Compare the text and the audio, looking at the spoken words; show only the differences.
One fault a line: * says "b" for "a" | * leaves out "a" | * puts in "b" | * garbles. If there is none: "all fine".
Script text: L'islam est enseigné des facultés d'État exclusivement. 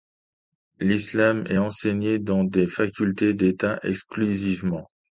* puts in "dans"